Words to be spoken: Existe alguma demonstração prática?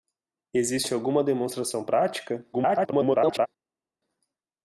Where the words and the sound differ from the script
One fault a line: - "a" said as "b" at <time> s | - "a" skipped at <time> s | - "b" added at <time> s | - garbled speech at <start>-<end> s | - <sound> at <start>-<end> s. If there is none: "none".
- garbled speech at 2.5-3.5 s